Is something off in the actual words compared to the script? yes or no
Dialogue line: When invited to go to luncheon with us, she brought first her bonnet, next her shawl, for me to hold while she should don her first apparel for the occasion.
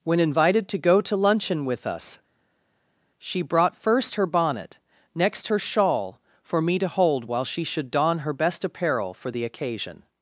yes